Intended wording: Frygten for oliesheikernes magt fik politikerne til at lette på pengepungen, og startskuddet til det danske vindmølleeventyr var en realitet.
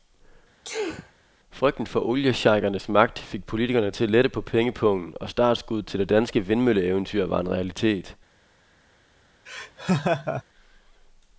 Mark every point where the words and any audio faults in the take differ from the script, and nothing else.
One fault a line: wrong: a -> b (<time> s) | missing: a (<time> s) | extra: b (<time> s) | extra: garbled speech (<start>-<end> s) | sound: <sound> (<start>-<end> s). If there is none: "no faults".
sound: sneeze (0.6-1.1 s)
sound: laugh (9.5-10.4 s)